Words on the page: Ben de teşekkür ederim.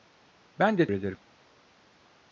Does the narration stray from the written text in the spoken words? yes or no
yes